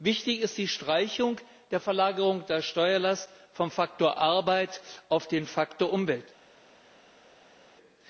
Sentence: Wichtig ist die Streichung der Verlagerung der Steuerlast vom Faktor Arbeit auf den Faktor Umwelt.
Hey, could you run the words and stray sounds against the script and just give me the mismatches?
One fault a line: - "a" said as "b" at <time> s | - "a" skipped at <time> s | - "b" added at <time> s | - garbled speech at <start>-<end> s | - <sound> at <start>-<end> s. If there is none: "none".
none